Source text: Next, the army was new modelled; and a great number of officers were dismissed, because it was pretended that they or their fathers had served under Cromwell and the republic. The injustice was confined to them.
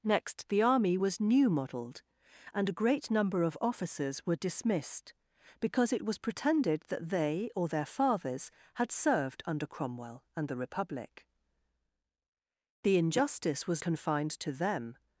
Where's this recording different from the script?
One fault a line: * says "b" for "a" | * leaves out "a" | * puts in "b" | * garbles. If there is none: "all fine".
all fine